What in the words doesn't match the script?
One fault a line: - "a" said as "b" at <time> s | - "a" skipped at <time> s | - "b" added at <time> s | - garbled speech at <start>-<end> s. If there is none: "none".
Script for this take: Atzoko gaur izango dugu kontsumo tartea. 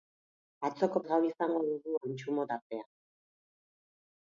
none